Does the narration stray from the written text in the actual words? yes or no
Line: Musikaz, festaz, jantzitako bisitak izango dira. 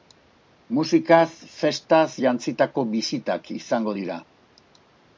no